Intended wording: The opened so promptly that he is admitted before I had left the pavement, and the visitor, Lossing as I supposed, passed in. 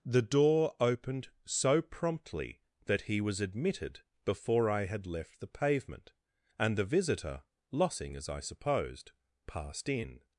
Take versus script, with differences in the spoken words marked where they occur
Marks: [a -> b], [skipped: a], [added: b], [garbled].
The [added: door] opened so promptly that he [is -> was] admitted before I had left the pavement, and the visitor, Lossing as I supposed, passed in.